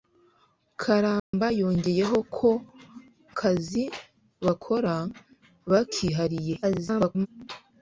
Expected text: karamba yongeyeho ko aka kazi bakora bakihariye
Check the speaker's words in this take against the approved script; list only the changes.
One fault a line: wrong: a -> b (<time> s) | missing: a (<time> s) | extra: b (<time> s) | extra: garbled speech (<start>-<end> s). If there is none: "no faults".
missing: aka (2.5 s)
extra: garbled speech (6.6-7.3 s)